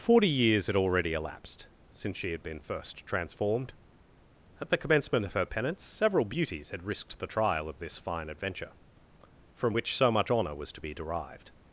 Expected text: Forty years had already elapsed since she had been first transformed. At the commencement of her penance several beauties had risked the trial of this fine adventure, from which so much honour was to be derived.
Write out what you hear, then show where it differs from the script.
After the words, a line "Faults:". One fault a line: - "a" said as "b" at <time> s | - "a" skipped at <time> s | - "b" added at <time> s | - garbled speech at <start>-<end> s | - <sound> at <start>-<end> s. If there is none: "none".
Forty years had already elapsed since she had been first transformed. At the commencement of her penance several beauties had risked the trial of this fine adventure, from which so much honour was to be derived.
Faults:
none